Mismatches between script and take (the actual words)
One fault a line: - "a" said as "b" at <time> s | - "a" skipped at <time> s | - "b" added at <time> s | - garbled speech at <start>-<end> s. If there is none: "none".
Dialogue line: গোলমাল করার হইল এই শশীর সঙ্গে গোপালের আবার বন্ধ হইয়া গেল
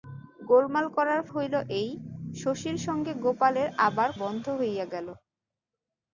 none